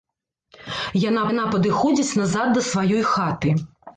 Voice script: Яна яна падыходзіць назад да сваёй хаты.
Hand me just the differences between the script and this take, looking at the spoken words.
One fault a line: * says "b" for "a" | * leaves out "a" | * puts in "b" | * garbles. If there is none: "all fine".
all fine